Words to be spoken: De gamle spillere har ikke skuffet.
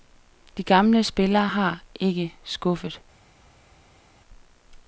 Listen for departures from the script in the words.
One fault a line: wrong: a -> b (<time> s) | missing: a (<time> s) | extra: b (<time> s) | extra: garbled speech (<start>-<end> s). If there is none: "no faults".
no faults